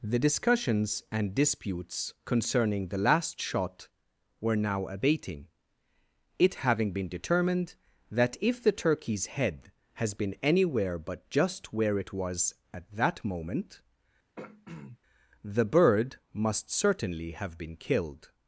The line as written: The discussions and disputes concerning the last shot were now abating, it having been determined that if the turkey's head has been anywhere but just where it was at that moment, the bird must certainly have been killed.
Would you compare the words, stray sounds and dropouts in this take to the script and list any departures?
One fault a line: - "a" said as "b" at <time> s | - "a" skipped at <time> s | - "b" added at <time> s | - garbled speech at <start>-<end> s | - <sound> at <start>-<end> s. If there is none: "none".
- throat clearing at 14.4-15.0 s